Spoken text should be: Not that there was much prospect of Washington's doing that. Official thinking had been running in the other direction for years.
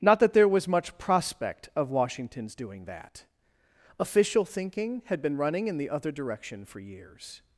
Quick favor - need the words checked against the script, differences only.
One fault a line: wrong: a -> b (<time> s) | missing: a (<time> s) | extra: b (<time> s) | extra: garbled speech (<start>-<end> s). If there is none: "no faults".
no faults